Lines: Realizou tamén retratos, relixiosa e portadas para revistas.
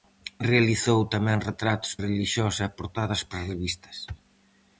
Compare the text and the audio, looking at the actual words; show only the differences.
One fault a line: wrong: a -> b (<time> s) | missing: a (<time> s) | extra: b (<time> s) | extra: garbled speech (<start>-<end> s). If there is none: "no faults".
no faults